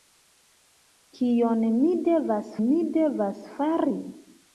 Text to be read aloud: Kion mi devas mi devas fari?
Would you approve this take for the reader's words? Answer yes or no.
yes